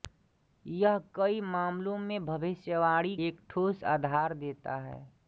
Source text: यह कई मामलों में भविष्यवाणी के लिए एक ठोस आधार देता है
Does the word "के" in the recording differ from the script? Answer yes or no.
yes